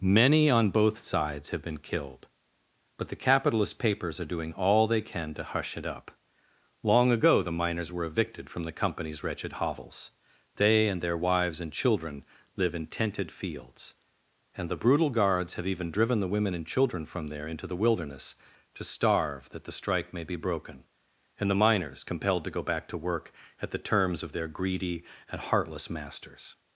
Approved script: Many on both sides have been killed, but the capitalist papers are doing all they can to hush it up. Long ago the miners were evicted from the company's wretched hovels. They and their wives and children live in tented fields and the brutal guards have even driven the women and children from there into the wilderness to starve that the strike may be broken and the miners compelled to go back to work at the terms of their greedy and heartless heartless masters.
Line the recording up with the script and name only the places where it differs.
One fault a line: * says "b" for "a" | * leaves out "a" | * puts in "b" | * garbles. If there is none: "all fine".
* leaves out "heartless"